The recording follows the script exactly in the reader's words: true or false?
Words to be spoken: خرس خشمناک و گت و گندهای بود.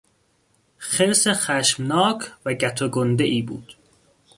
true